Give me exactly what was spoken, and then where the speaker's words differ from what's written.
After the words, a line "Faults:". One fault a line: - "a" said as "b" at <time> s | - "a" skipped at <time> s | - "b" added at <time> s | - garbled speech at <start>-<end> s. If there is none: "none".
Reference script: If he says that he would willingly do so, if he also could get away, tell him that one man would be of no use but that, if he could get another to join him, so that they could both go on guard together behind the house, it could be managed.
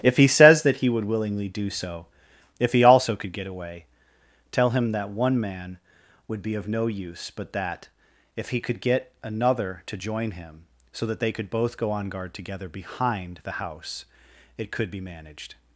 If he says that he would willingly do so, if he also could get away, tell him that one man would be of no use but that, if he could get another to join him, so that they could both go on guard together behind the house, it could be managed.
Faults:
none